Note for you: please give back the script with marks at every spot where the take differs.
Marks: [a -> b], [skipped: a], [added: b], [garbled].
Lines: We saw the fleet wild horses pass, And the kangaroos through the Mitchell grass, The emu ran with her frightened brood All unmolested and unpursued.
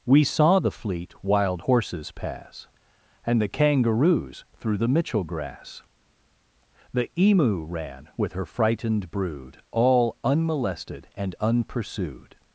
We saw the fleet wild horses pass, And the kangaroos through the Mitchell grass, The emu ran with her frightened brood All unmolested and unpursued.